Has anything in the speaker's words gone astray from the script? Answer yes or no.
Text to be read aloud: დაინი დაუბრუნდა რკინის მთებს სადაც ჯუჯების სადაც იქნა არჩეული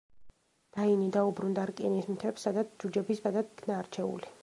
no